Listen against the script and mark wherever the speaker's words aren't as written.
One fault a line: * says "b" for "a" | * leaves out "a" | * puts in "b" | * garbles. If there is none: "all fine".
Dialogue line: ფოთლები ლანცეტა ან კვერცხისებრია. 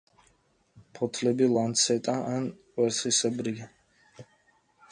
all fine